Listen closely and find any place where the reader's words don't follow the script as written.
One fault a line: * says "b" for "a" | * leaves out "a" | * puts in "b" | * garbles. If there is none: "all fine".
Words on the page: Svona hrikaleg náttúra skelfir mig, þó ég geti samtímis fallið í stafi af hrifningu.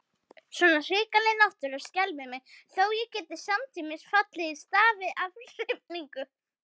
all fine